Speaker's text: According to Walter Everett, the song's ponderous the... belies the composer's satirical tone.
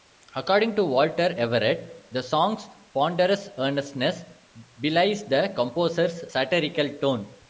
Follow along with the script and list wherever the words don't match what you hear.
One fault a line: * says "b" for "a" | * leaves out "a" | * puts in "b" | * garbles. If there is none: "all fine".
* says "earnestness" for "the"